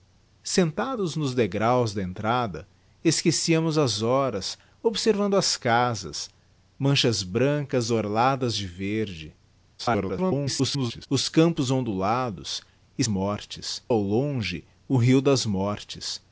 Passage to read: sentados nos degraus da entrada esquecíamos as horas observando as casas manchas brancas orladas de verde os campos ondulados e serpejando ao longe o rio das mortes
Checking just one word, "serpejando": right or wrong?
wrong